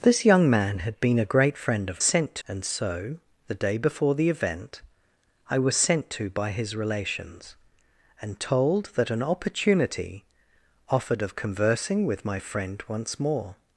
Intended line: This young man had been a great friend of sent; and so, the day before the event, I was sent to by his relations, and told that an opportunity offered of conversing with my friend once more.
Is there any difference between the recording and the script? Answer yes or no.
no